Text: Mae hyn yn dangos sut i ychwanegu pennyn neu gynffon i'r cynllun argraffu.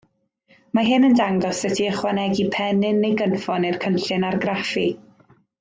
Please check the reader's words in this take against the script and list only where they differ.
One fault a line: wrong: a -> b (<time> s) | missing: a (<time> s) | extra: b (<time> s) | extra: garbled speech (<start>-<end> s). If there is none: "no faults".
no faults